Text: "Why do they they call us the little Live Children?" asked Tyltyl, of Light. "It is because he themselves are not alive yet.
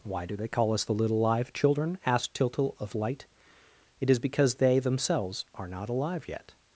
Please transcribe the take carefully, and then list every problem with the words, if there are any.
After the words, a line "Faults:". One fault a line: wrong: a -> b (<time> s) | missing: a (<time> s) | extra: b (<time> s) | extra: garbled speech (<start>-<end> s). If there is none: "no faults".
"Why do they call us the little Live Children?" asked Tyltyl, of Light. "It is because they themselves are not alive yet.
Faults:
missing: they (0.5 s)
wrong: he -> they (4.5 s)